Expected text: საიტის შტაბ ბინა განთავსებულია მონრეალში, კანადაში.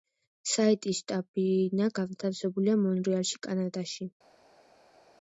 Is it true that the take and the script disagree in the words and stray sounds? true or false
false